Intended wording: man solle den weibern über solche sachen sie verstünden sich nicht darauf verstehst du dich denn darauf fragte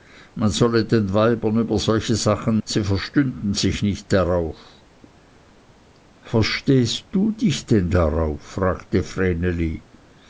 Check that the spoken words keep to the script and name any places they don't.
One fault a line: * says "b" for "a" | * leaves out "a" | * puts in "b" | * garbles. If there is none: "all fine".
all fine